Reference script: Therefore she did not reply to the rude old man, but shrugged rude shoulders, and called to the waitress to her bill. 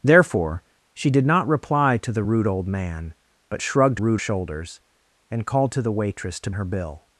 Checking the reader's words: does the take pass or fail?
pass